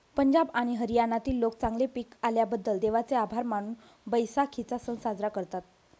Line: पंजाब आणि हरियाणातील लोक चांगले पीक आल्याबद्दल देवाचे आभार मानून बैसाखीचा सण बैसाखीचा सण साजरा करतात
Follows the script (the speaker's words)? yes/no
no